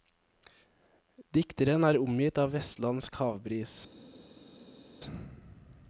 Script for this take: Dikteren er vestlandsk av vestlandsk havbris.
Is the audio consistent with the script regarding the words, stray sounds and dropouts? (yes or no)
no